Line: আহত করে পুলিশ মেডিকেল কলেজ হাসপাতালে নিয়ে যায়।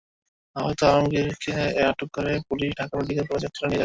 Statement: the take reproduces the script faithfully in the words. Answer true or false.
false